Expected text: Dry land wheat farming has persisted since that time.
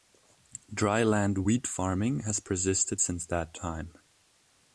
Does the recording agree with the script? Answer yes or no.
yes